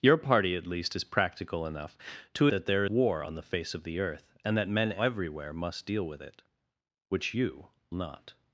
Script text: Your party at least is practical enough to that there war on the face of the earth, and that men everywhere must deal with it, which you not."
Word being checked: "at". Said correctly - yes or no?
yes